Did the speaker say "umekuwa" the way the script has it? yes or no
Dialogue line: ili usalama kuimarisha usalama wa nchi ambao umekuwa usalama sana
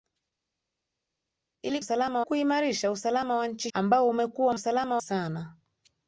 yes